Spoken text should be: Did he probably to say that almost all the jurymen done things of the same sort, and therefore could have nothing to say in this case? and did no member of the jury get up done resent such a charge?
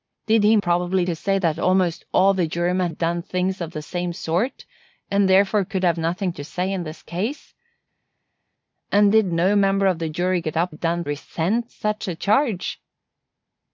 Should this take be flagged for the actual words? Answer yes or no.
no